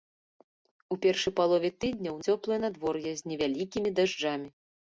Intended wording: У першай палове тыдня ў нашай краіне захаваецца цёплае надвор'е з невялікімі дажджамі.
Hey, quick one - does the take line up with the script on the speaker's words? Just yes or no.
no